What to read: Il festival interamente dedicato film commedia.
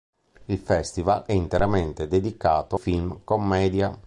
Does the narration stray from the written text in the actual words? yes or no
no